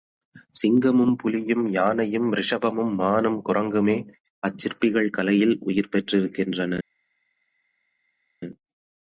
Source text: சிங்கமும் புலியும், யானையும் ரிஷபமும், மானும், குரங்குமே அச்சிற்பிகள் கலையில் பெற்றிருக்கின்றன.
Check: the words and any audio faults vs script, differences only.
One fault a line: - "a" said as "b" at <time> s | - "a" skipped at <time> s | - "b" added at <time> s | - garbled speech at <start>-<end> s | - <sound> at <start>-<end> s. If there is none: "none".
- "உயிர்" added at 5.6 s